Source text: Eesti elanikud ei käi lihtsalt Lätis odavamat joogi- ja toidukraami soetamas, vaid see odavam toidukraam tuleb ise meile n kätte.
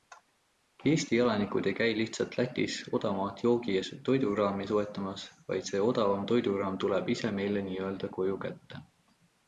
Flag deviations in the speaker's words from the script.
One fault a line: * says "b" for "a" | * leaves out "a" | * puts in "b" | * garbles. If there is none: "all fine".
* puts in "ö koju"